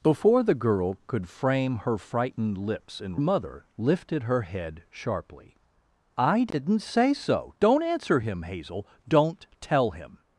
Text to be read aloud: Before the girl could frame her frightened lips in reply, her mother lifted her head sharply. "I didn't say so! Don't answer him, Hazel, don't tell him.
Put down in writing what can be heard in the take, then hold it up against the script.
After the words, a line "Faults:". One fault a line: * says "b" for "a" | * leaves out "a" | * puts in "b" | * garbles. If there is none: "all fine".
Before the girl could frame her frightened lips in mother lifted her head sharply. "I didn't say so! Don't answer him, Hazel, don't tell him.
Faults:
* leaves out "reply her"